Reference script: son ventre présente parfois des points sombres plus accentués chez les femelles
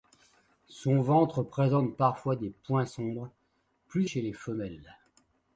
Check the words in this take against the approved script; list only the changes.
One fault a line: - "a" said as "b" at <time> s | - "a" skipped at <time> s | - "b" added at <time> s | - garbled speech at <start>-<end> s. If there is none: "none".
- "accentués" skipped at 4.1 s